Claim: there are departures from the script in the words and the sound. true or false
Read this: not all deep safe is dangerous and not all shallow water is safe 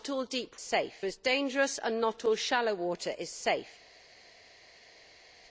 false